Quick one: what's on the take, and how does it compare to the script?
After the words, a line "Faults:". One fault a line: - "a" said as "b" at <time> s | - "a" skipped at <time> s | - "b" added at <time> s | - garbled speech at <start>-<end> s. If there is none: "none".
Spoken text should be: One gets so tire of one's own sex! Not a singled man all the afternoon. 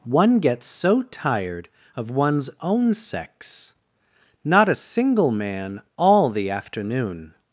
One gets so tired of one's own sex! Not a single man all the afternoon.
Faults:
- "tire" said as "tired" at 1.0 s
- "singled" said as "single" at 4.7 s